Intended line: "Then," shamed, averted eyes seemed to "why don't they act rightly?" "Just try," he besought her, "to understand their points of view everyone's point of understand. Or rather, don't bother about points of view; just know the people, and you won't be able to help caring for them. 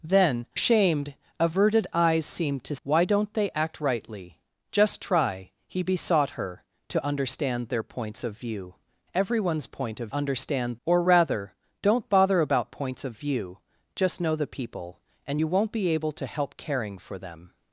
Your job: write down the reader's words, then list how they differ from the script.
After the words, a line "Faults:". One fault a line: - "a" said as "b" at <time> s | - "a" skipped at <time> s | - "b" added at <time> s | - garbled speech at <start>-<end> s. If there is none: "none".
"Then," shamed, averted eyes seemed to "why don't they act rightly?" "Just try," he besought her, "to understand their points of view everyone's point of understand. Or rather, don't bother about points of view; just know the people, and you won't be able to help caring for them.
Faults:
none